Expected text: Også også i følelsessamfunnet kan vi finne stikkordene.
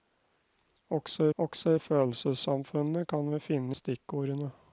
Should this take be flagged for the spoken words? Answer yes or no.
no